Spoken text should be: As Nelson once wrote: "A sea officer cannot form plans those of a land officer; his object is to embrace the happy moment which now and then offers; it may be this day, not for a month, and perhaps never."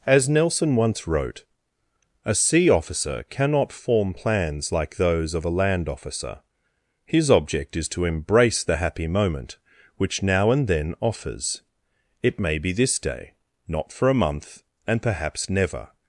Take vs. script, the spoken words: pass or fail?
fail